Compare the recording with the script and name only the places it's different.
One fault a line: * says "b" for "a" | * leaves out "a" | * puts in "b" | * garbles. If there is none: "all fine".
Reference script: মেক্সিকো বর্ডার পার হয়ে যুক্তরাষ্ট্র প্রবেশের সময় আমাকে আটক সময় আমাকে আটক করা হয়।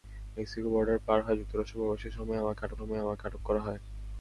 all fine